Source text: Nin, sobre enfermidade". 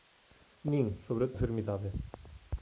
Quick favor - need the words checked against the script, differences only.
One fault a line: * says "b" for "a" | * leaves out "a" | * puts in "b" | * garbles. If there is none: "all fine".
all fine